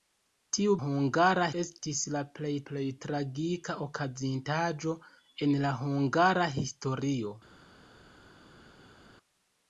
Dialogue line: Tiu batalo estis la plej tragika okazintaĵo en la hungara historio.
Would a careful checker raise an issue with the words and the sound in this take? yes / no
yes